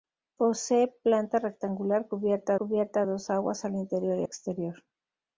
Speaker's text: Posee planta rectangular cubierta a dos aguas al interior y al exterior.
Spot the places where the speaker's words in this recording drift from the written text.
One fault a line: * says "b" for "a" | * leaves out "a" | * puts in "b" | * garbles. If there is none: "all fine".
* puts in "cubierta"
* leaves out "al"